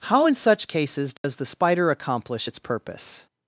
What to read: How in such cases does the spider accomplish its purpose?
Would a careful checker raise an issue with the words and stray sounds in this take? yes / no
yes